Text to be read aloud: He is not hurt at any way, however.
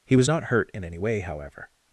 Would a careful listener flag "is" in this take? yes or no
yes